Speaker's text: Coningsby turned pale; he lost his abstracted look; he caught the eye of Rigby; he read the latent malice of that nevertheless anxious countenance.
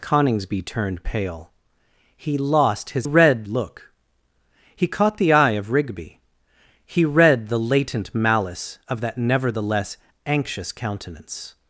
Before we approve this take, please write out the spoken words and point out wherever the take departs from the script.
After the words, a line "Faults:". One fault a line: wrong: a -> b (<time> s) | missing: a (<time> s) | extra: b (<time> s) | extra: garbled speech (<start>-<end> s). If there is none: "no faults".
Coningsby turned pale; he lost his read look; he caught the eye of Rigby; he read the latent malice of that nevertheless anxious countenance.
Faults:
wrong: abstracted -> read (3.0 s)